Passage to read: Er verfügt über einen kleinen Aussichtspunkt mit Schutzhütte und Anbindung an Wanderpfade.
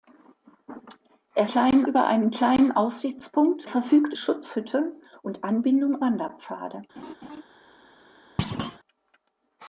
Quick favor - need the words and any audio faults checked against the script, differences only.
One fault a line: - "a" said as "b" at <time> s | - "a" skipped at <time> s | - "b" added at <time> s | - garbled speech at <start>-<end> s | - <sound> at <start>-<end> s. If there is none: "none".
- "verfügt" said as "kleinen" at 1.4 s
- "mit" said as "verfügt" at 3.6 s
- "an" skipped at 6.0 s
- laugh at 7.0-7.4 s
- thud at 8.4-8.8 s